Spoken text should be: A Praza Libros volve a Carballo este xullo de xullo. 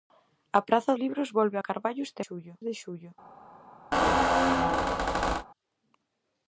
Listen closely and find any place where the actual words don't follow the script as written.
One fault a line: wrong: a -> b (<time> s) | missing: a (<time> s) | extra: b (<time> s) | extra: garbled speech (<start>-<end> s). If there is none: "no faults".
no faults